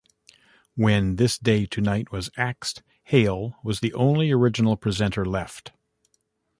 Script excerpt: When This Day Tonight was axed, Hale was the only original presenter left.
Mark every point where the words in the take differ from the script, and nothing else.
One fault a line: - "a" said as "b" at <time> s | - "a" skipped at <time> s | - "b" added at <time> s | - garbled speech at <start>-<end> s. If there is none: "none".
none